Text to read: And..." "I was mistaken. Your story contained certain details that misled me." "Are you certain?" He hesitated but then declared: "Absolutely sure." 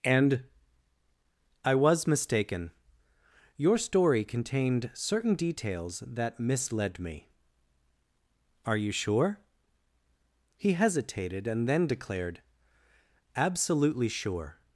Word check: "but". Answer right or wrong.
wrong